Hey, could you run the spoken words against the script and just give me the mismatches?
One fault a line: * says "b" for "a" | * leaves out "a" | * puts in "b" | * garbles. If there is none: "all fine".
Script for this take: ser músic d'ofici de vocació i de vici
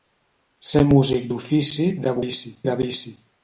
* says "vici" for "vocació"